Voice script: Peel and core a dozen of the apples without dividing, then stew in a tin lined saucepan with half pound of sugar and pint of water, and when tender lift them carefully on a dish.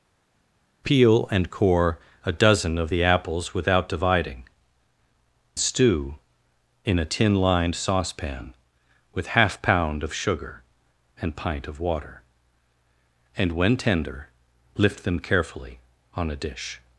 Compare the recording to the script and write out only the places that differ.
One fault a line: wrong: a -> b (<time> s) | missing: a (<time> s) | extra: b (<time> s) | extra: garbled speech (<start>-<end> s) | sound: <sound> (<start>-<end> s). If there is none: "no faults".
missing: then (4.4 s)